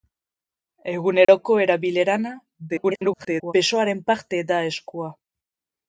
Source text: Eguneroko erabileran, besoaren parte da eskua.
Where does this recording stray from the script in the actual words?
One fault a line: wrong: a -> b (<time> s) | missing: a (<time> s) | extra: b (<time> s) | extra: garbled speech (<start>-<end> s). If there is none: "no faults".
extra: garbled speech (2.7-3.5 s)